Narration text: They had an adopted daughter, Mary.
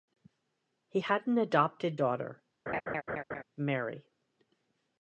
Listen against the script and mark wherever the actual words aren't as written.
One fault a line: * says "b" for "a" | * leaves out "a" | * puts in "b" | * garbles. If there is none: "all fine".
* says "He" for "They"